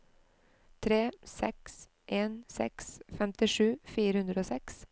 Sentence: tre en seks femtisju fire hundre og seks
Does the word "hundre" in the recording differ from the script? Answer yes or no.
no